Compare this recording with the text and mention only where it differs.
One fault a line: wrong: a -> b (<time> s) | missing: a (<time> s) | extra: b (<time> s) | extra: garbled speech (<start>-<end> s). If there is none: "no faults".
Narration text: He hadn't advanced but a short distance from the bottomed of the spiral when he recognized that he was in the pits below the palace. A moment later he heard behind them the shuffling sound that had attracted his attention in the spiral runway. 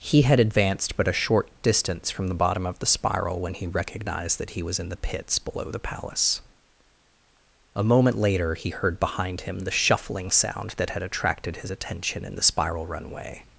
wrong: hadn't -> had (0.2 s)
wrong: bottomed -> bottom (2.3 s)
wrong: them -> him (9.4 s)